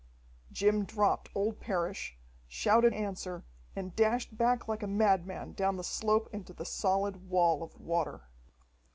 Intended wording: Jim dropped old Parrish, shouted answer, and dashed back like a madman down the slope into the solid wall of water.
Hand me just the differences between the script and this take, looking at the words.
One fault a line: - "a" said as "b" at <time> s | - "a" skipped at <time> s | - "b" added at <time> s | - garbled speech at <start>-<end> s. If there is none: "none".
none